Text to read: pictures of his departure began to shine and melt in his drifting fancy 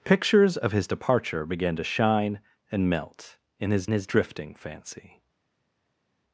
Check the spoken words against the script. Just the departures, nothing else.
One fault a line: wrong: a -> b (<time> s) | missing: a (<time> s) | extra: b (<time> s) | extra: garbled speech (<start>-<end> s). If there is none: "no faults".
extra: his (3.9 s)